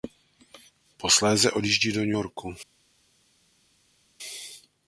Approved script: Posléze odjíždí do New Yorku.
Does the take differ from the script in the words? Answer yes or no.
no